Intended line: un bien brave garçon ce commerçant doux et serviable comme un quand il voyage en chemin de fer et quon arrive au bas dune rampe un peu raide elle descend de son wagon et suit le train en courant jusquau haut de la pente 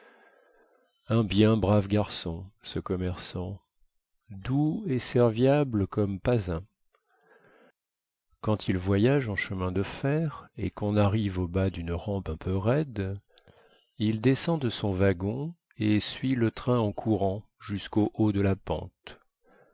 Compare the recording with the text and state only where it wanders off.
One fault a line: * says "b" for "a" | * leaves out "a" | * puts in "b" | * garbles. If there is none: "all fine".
* puts in "pas"
* says "il" for "elle"